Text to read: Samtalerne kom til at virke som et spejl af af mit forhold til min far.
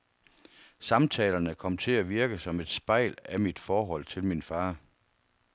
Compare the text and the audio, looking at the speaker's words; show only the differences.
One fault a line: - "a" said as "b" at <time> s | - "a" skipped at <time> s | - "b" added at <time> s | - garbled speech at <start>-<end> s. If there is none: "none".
- "af" skipped at 3.4 s